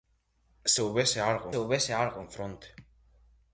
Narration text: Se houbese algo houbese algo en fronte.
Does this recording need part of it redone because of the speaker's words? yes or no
no